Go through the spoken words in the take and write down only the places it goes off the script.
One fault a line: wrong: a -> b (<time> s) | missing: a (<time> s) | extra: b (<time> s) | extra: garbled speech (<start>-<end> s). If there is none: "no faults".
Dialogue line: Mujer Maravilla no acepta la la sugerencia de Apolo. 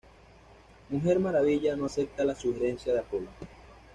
missing: la (2.4 s)